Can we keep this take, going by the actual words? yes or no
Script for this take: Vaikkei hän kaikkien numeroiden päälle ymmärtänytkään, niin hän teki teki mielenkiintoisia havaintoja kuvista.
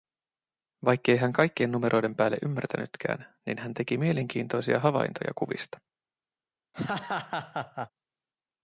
no